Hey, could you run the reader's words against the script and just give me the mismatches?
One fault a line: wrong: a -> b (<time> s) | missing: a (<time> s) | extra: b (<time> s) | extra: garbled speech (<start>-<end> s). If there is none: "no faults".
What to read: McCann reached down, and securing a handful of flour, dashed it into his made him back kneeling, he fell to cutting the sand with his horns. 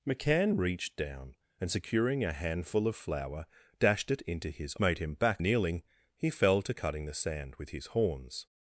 no faults